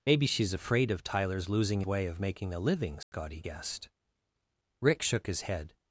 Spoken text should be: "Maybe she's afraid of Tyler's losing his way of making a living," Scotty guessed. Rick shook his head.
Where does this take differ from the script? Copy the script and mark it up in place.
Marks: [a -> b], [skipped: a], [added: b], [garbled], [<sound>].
"Maybe she's afraid of Tyler's losing [skipped: his] way of making a living," Scotty [dropout] guessed. Rick shook his head.